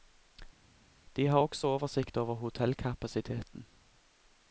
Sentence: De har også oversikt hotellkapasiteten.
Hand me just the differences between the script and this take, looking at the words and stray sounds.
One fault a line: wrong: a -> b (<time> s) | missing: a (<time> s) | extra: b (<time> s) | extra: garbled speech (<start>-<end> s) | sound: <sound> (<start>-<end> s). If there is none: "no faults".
extra: over (2.2 s)